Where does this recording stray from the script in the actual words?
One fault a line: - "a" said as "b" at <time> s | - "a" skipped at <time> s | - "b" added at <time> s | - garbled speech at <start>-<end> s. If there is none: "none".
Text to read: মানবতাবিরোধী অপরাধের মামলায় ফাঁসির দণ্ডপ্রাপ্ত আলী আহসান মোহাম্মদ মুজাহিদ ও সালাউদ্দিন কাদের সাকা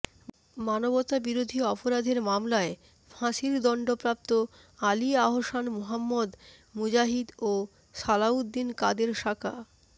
none